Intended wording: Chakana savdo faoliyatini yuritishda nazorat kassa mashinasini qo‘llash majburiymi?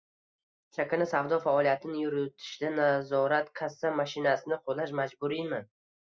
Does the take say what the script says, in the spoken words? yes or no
yes